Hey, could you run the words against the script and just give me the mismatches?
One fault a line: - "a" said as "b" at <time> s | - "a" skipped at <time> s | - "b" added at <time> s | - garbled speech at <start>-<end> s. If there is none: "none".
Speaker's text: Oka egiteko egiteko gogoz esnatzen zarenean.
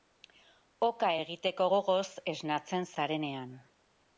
- "egiteko" skipped at 1.7 s